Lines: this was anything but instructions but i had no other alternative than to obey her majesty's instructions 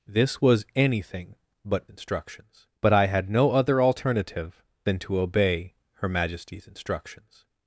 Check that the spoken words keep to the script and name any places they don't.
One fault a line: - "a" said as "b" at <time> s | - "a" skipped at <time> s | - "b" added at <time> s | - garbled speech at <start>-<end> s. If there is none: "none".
none